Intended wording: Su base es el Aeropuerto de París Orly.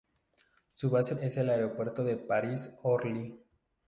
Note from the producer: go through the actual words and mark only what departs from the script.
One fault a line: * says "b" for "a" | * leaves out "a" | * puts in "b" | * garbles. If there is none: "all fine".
all fine